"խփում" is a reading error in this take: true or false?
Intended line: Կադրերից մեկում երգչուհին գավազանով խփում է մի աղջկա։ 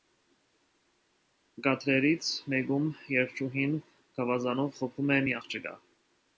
false